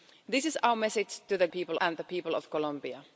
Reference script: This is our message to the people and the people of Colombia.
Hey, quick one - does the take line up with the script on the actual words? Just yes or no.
yes